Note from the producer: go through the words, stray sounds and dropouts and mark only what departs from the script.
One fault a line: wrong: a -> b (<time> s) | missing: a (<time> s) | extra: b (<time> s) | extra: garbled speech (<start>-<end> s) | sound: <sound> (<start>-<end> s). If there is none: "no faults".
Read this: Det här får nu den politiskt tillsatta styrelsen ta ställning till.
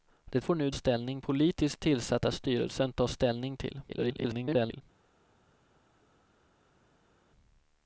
missing: här (0.5 s)
wrong: den -> ställning (0.7 s)
extra: garbled speech (3.9-4.8 s)